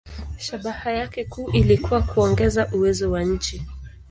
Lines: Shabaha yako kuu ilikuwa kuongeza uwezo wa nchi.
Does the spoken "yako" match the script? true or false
false